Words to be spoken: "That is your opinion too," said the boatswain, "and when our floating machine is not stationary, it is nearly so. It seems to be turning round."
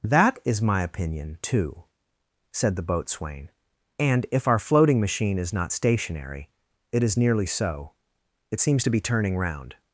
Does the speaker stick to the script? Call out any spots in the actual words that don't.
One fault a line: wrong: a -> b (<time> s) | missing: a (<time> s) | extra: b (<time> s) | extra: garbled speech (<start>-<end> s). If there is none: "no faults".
wrong: your -> my (0.6 s)
wrong: when -> if (4.3 s)